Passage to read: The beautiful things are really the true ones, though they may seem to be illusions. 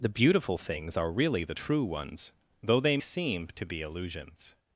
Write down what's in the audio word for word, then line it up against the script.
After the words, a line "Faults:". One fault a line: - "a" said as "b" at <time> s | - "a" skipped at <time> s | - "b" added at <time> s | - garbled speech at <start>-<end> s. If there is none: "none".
The beautiful things are really the true ones, though they seem to be illusions.
Faults:
- "may" skipped at 3.0 s